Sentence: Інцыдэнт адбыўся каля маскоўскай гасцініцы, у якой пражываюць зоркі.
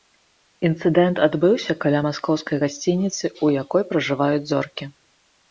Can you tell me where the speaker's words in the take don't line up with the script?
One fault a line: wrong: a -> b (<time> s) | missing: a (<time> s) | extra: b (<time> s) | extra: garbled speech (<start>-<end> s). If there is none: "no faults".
no faults